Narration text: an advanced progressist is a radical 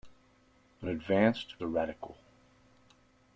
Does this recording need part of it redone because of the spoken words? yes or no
yes